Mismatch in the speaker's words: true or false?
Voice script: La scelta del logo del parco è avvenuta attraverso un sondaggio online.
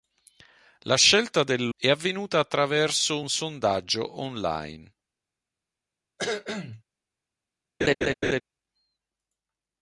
true